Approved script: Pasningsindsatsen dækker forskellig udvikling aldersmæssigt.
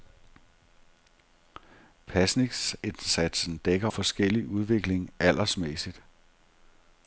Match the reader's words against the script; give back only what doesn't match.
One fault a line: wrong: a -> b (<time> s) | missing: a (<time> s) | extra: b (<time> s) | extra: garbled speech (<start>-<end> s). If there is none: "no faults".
no faults